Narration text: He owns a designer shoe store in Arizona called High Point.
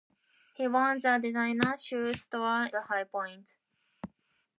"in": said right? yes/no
no